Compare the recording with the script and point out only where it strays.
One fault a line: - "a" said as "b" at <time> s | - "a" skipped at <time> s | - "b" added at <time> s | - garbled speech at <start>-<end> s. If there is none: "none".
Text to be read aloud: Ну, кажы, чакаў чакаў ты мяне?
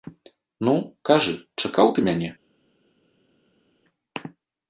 - "чакаў" skipped at 1.9 s